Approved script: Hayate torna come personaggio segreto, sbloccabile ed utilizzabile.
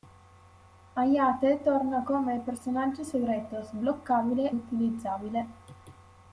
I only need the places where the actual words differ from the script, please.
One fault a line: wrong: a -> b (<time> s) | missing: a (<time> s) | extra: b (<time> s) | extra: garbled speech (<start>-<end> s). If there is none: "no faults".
missing: ed (4.5 s)